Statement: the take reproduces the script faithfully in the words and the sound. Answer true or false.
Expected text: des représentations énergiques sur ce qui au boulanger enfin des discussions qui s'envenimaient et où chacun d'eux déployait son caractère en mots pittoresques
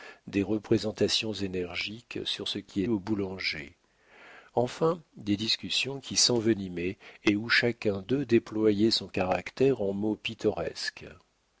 true